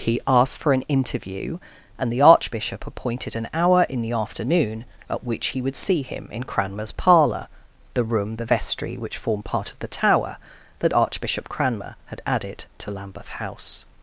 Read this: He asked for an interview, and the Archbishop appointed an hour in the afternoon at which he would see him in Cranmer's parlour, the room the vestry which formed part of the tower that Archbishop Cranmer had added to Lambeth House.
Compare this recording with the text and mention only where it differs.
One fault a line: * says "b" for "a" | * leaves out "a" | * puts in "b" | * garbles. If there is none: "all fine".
all fine